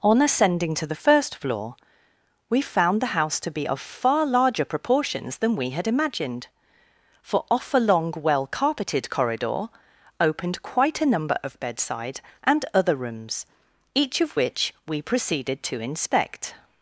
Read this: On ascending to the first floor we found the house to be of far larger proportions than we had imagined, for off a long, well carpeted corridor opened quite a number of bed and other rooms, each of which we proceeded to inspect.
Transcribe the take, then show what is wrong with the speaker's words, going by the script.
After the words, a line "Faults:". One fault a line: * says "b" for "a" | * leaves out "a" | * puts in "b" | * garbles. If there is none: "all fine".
On ascending to the first floor we found the house to be of far larger proportions than we had imagined, for off a long, well carpeted corridor opened quite a number of bedside and other rooms, each of which we proceeded to inspect.
Faults:
* says "bedside" for "bed"